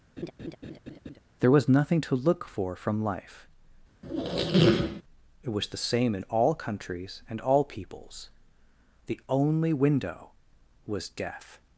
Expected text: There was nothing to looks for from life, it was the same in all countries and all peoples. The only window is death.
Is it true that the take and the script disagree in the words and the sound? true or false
true